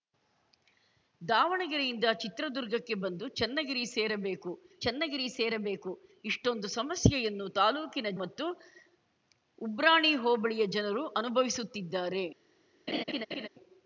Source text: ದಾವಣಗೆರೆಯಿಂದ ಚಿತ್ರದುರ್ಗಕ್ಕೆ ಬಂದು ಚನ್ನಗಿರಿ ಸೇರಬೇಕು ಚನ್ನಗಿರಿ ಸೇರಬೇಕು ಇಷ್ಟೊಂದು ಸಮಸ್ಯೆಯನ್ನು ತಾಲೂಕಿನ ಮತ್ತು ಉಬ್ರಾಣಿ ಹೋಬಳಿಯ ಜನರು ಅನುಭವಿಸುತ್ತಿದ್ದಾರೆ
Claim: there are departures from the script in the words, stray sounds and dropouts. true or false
true